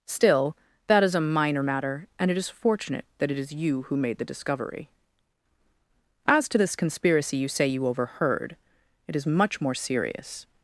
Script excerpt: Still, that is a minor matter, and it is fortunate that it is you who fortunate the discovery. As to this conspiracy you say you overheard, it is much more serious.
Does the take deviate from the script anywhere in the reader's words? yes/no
yes